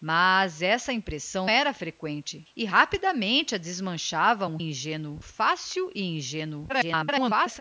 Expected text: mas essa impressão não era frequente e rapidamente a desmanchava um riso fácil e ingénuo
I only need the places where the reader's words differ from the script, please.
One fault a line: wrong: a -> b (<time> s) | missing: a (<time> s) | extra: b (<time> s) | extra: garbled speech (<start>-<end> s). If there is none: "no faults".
missing: não (1.5 s)
wrong: riso -> ingénuo (4.6 s)
extra: garbled speech (6.7-7.6 s)